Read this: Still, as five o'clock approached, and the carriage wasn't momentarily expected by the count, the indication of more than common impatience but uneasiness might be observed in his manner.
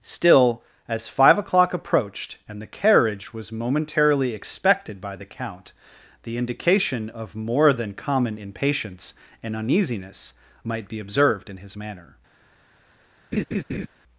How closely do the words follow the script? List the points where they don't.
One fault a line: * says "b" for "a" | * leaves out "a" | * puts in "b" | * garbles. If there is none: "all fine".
* says "was" for "wasn't"
* says "and" for "but"